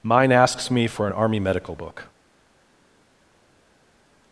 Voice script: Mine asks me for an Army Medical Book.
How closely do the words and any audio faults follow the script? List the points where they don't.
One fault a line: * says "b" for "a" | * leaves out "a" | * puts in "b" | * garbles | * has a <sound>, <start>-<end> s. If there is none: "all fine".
all fine